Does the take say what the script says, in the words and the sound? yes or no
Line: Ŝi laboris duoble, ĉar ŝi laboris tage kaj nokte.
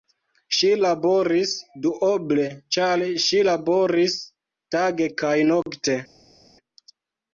yes